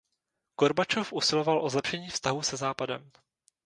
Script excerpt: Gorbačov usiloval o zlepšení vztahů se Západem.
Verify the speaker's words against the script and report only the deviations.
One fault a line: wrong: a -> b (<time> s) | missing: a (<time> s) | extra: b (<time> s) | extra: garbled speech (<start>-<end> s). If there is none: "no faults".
no faults